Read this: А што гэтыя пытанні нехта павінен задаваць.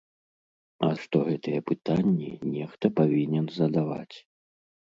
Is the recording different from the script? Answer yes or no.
no